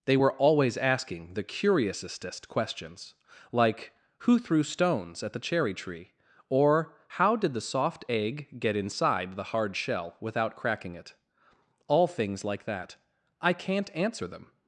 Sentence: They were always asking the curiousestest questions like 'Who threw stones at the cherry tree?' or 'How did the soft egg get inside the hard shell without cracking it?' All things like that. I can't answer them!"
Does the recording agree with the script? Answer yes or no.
yes